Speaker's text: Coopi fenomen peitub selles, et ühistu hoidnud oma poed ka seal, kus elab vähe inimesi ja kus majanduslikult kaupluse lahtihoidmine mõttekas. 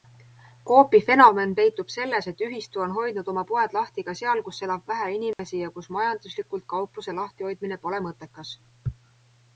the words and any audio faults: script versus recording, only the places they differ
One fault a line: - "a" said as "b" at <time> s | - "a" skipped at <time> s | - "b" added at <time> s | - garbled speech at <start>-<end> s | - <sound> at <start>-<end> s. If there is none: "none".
- "on" added at 2.9 s
- "lahti" added at 3.8 s
- dropout at 5.3-5.4 s
- "pole" added at 7.9 s